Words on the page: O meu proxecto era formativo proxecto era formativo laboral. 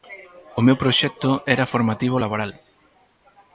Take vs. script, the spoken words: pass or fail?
fail